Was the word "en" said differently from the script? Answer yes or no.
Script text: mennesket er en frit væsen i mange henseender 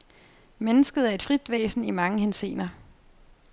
yes